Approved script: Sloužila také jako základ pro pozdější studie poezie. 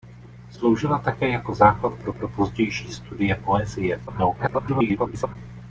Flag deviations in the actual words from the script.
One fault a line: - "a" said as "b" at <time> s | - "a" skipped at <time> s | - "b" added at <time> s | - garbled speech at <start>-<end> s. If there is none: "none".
- "pro" added at 2.1 s
- garbled speech at 4.1-5.4 s